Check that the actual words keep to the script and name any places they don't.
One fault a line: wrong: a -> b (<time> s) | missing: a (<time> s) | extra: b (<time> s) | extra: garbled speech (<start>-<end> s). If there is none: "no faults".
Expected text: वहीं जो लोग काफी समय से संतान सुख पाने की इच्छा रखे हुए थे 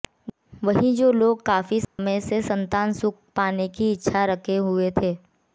no faults